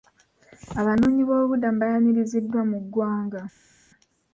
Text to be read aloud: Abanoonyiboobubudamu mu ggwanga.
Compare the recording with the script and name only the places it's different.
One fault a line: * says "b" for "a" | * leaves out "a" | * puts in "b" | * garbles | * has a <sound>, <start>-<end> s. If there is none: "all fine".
* puts in "baayaniriziddwa"